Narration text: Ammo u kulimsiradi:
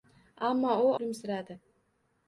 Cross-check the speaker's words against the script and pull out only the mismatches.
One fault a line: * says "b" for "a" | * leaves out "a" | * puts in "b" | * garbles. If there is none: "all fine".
all fine